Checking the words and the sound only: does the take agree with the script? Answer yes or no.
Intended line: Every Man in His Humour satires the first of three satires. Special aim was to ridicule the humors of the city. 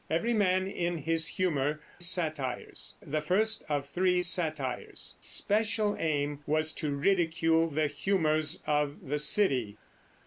yes